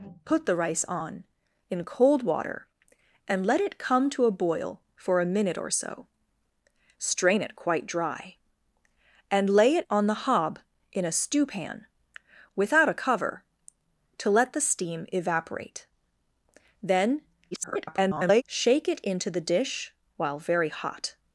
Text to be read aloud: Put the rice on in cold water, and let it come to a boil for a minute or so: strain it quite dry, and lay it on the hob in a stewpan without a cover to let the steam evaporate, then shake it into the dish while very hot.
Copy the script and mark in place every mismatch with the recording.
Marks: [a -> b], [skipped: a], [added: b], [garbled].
Put the rice on in cold water, and let it come to a boil for a minute or so: strain it quite dry, and lay it on the hob in a stewpan without a cover to let the steam evaporate, then [garbled] shake it into the dish while very hot.